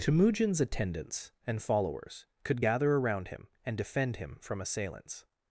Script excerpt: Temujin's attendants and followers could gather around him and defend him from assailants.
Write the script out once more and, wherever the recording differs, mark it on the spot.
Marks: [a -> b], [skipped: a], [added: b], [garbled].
Temujin's attendants and followers could gather around him and defend him from assailants.